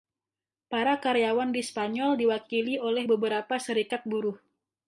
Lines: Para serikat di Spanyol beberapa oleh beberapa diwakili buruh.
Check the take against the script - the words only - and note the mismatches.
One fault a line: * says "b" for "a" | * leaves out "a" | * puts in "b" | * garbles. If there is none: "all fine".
* says "karyawan" for "serikat"
* says "diwakili" for "beberapa"
* says "serikat" for "diwakili"